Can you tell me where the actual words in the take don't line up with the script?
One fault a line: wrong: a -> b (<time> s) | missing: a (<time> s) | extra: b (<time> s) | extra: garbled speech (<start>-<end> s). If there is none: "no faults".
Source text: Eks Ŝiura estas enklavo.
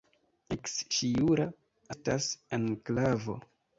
no faults